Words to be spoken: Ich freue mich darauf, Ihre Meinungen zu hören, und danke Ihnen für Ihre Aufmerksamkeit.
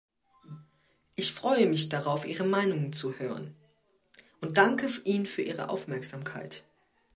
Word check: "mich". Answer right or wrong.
right